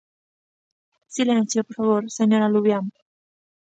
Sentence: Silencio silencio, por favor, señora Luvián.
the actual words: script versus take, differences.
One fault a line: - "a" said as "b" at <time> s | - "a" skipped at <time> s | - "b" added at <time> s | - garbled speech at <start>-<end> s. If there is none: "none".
- "silencio" skipped at 1.6 s